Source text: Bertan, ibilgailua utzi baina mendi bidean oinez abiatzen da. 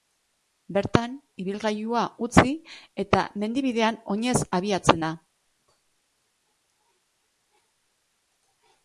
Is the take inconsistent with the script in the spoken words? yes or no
yes